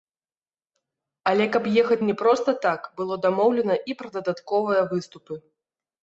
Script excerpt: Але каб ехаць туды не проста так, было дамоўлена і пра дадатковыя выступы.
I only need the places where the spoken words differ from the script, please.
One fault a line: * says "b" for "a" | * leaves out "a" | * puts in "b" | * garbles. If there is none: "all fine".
* leaves out "туды"